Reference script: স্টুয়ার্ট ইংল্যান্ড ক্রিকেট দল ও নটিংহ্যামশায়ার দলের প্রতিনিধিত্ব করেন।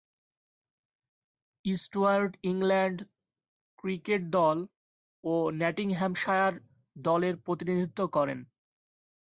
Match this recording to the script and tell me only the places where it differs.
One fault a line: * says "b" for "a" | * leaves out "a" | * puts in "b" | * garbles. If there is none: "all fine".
all fine